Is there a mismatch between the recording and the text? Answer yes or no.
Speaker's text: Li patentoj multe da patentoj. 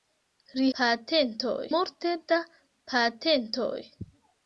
no